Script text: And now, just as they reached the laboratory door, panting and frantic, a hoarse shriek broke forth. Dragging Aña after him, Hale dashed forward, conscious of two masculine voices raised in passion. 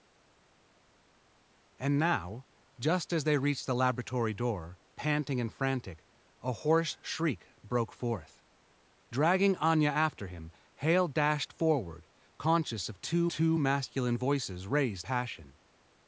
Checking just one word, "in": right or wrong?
wrong